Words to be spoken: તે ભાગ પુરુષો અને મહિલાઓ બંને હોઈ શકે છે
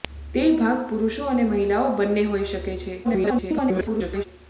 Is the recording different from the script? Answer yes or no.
yes